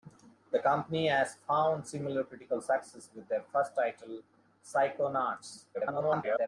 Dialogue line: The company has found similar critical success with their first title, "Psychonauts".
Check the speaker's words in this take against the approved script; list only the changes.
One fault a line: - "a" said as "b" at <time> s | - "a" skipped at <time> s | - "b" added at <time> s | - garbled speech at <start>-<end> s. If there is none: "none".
- garbled speech at 5.7-6.5 s